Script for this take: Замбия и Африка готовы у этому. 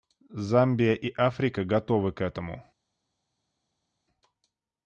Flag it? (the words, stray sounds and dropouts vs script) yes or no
yes